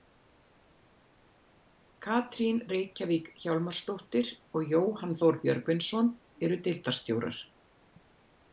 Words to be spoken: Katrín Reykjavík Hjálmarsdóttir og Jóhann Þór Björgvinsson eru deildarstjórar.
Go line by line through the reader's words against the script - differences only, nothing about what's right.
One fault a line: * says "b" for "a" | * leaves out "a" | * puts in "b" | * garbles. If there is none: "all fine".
all fine